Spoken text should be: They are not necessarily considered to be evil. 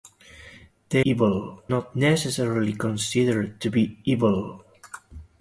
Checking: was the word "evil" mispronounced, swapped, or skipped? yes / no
no